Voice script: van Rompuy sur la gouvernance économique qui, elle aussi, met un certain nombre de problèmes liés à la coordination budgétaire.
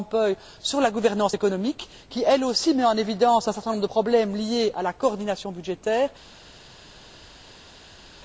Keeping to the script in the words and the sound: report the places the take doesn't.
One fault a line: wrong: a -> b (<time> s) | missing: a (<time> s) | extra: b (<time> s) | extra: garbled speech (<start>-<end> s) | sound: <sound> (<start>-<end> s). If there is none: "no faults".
extra: en évidence (2.8 s)